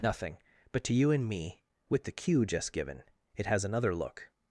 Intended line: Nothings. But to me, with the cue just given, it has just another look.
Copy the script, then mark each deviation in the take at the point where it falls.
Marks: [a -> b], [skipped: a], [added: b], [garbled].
[Nothings. -> Nothing] But to [added: you and] me, with the cue just given, it has [skipped: just] another look.